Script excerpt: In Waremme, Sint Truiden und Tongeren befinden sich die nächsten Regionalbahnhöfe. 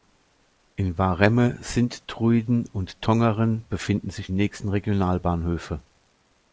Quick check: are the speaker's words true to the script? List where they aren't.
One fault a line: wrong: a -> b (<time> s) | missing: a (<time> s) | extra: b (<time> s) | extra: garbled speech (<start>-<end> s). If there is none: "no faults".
missing: die (4.3 s)